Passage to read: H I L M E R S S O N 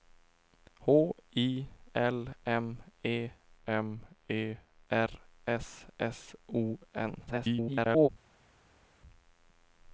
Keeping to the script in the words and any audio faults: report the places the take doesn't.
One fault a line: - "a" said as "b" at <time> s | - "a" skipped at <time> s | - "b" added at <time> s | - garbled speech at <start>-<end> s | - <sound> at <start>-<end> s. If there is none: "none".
- "M E" added at 3.6 s
- garbled speech at 7.3-8.1 s